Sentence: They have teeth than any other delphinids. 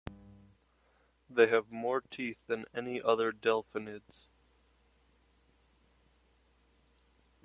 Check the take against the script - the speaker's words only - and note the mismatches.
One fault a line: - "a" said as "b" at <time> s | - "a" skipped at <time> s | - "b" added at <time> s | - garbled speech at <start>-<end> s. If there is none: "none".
- "more" added at 1.7 s